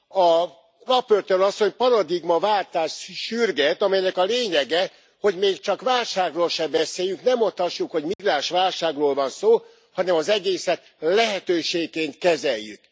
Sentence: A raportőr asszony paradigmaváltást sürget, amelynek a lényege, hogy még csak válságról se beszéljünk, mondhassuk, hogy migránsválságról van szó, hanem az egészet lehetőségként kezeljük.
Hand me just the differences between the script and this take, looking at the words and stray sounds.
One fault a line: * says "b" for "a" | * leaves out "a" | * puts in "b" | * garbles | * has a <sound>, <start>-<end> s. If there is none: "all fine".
* puts in "ne"
* has a dropout, 8.1-8.2 s